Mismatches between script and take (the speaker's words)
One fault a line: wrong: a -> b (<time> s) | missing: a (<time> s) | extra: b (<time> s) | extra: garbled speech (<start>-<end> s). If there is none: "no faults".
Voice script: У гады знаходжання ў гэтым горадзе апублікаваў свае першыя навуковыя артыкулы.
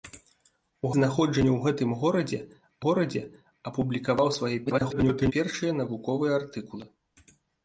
missing: гады (0.9 s)
extra: горадзе (2.9 s)
extra: garbled speech (4.7-5.3 s)